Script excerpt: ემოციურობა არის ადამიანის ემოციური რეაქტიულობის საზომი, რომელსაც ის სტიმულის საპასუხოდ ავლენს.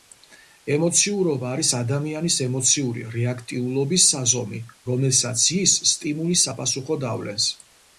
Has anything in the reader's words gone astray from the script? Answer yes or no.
no